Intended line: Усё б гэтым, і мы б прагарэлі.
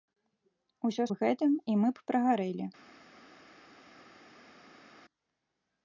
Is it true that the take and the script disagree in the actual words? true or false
false